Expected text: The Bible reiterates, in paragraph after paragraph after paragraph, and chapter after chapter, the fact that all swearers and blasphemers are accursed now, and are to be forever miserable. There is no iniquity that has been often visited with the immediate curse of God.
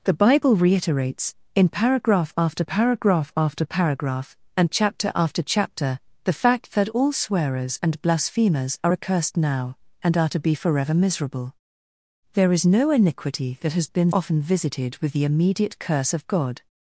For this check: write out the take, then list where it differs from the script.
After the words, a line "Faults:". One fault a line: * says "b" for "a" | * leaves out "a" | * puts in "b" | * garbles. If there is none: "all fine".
The Bible reiterates, in paragraph after paragraph after paragraph, and chapter after chapter, the fact that all swearers and blasphemers are accursed now, and are to be forever miserable. There is no iniquity that has been often visited with the immediate curse of God.
Faults:
all fine